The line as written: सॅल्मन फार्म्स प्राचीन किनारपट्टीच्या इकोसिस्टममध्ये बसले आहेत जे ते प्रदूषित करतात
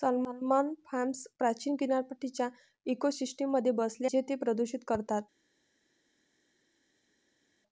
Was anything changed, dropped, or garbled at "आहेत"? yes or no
yes